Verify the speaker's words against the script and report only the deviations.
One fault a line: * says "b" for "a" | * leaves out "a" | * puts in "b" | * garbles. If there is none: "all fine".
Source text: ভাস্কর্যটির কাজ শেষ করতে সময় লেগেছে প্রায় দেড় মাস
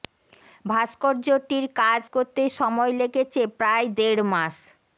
* leaves out "শেষ"